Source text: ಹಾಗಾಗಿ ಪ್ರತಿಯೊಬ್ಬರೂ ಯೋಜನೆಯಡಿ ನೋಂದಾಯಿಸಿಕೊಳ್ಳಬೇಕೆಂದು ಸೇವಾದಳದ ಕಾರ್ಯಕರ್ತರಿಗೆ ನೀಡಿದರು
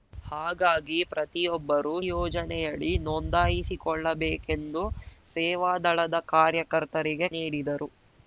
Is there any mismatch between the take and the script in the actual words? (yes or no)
no